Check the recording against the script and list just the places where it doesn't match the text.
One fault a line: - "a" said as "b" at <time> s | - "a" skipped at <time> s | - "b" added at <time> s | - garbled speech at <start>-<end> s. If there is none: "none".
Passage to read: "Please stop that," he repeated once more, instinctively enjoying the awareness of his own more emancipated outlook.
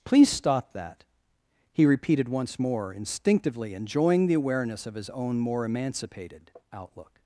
none